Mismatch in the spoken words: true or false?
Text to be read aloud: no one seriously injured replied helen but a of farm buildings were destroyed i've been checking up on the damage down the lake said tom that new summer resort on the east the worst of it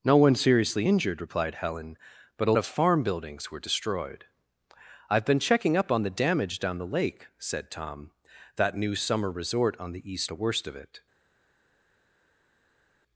false